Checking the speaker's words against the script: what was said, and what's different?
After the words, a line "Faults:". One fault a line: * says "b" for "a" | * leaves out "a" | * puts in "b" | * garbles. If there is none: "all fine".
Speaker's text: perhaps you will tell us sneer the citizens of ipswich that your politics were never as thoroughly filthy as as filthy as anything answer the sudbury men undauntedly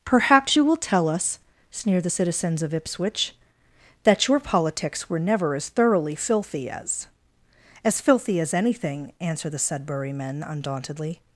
perhaps you will tell us sneer the citizens of ipswich that your politics were never as thoroughly filthy as as filthy as anything answer the sudbury men undauntedly
Faults:
all fine